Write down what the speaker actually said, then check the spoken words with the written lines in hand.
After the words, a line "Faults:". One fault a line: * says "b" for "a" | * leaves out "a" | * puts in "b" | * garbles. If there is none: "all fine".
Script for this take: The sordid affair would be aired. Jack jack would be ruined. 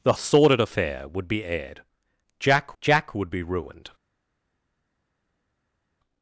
The sordid affair would be aired. Jack jack would be ruined.
Faults:
all fine